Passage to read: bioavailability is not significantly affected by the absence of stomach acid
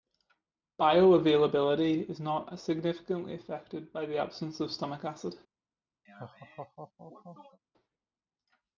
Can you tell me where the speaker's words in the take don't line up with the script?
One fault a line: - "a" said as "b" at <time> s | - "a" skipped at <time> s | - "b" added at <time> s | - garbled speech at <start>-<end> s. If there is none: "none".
none